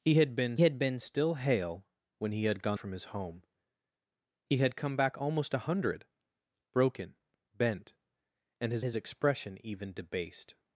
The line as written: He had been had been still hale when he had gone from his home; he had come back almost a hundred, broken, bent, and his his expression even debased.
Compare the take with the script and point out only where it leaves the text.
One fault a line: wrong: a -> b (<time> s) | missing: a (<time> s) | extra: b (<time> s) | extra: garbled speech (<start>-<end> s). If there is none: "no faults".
no faults